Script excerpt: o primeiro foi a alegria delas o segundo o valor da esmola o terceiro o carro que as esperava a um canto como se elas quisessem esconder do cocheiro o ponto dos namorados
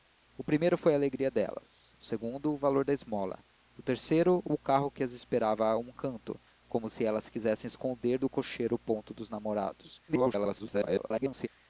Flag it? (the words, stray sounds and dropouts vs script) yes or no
yes